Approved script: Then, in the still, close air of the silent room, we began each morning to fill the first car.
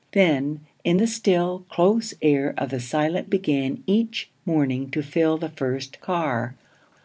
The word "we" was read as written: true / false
false